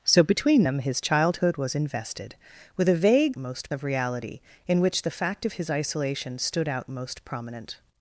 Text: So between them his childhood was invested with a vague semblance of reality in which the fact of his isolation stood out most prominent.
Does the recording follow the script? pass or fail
fail